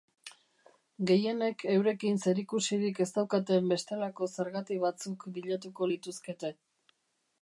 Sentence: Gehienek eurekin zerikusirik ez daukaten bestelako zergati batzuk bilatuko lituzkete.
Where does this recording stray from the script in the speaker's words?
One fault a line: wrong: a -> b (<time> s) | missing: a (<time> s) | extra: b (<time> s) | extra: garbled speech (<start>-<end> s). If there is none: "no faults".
no faults